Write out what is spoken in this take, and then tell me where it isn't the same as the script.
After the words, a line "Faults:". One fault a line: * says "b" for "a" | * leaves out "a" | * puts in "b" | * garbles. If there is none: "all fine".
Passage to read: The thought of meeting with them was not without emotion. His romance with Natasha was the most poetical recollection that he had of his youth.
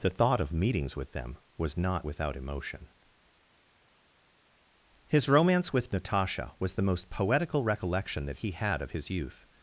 The thought of meetings with them was not without emotion. His romance with Natasha was the most poetical recollection that he had of his youth.
Faults:
* says "meetings" for "meeting"